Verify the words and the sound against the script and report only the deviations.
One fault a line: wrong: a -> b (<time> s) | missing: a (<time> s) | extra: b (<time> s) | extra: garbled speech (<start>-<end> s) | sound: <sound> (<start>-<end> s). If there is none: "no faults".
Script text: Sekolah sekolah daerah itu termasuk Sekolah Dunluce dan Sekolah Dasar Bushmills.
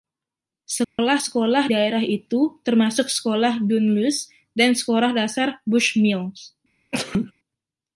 sound: dropout (0.8-1.0 s)
sound: sneeze (6.9-7.3 s)